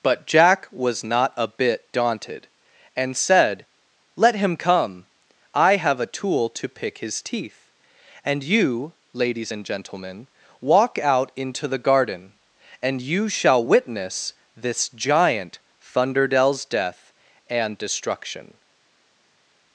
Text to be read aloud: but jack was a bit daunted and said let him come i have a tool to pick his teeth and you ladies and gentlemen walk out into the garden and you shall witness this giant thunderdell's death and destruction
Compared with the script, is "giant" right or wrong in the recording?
right